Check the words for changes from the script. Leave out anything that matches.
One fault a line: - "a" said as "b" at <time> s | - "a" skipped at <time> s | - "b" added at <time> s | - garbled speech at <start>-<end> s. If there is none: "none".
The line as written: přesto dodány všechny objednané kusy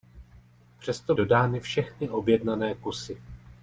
none